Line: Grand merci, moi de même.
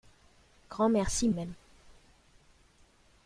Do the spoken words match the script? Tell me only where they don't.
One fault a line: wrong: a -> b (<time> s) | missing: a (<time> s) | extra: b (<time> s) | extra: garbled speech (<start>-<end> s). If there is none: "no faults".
missing: moi de (1.3 s)